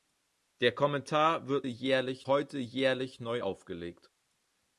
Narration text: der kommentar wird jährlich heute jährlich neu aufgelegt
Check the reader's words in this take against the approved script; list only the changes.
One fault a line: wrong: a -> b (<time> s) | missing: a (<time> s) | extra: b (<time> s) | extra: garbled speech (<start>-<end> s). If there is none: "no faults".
no faults